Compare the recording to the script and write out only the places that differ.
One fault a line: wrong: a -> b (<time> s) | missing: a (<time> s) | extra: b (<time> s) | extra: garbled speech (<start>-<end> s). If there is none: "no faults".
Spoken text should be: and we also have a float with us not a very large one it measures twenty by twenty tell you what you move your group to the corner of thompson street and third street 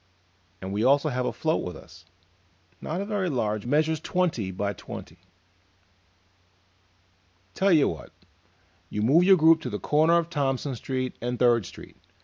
missing: one it (3.7 s)